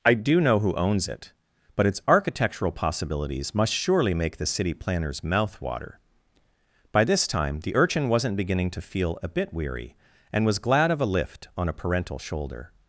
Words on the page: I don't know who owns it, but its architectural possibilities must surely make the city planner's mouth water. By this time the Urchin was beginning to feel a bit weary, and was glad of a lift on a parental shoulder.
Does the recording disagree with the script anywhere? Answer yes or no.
yes